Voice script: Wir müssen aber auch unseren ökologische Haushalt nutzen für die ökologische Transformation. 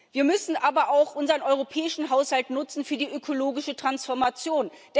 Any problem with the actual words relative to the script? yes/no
yes